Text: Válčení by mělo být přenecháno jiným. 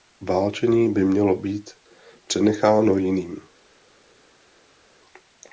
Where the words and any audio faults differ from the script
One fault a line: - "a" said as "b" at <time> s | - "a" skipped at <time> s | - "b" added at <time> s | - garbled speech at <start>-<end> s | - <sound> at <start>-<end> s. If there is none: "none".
none